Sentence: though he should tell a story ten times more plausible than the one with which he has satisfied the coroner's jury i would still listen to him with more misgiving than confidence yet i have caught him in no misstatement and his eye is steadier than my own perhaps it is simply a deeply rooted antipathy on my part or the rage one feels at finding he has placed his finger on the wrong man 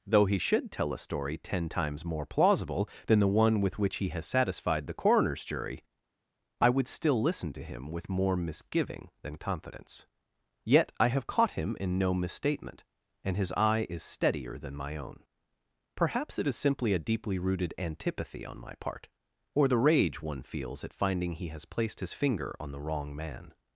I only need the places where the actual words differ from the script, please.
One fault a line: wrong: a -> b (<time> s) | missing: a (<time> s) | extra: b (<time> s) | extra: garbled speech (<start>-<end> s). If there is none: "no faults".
no faults